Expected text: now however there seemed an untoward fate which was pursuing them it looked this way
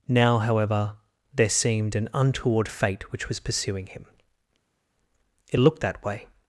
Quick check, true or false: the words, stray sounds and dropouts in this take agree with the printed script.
false